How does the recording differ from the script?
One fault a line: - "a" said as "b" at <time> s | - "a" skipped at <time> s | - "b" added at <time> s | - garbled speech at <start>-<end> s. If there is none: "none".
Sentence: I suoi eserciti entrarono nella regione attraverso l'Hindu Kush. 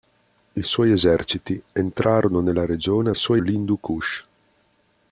- "attraverso" said as "suoi" at 3.1 s